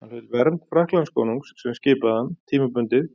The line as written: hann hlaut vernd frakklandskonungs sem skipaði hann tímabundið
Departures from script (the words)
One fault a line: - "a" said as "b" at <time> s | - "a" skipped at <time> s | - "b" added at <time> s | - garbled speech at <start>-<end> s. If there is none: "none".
none